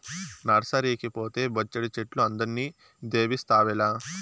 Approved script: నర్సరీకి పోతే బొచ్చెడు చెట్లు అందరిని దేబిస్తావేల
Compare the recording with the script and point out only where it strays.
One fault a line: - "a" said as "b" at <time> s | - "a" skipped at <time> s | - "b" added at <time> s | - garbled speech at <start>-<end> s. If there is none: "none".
none